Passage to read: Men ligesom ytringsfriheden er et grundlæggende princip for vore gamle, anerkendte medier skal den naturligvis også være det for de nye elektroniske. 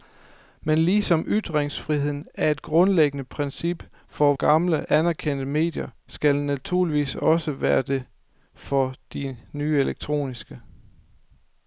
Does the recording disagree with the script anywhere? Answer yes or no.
yes